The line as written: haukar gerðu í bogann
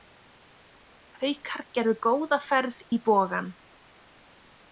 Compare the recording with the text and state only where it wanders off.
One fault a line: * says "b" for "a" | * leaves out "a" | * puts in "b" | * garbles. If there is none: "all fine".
* puts in "góða ferð"